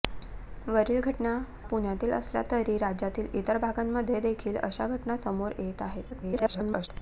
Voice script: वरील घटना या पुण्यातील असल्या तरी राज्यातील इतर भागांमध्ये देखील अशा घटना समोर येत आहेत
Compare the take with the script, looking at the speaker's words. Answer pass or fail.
fail